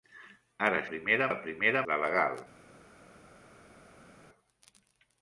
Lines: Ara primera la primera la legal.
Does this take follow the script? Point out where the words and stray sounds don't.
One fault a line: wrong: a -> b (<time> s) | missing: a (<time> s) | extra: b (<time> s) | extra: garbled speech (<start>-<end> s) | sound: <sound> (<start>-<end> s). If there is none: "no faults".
no faults